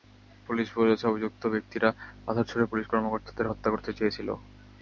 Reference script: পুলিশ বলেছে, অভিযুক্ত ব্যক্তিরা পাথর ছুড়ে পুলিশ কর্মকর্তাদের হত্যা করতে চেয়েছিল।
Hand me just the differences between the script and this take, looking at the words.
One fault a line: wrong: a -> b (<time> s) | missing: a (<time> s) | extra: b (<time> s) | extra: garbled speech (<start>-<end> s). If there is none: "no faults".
no faults